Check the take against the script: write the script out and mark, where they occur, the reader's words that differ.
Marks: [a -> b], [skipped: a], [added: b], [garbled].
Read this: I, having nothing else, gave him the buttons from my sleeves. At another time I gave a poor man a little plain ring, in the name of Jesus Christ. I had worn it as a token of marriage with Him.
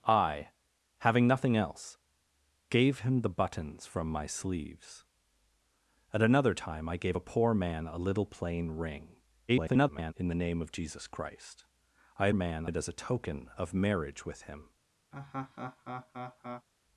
I, having nothing else, gave him the buttons from my sleeves. At another time I gave a poor man a little plain ring, [garbled] in the name of Jesus Christ. I had [worn -> man] it as a token of marriage with Him.